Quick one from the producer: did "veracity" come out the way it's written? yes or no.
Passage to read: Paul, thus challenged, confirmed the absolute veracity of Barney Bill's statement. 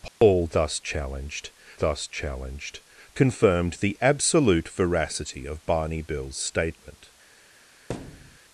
yes